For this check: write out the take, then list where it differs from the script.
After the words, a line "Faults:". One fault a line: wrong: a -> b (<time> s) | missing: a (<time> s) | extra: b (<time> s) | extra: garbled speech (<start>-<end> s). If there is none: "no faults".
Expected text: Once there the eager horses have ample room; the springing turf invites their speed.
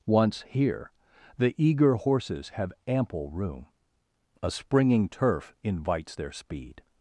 Once here the eager horses have ample room; a springing turf invites their speed.
Faults:
wrong: there -> here (0.5 s)
wrong: the -> a (4.4 s)